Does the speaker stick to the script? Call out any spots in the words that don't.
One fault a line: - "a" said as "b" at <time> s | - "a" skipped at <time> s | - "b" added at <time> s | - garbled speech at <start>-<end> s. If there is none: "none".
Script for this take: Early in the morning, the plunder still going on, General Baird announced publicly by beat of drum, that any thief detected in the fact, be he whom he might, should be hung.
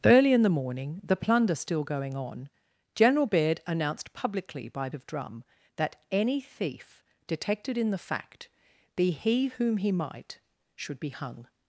- "beat" skipped at 4.9 s